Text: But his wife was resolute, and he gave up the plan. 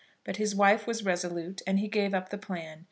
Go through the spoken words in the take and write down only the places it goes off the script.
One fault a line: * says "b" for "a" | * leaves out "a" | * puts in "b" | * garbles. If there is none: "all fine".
all fine